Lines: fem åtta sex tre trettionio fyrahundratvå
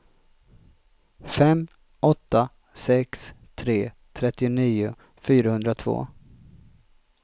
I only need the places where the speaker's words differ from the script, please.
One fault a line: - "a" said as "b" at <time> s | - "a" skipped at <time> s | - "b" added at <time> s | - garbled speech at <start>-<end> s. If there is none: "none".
none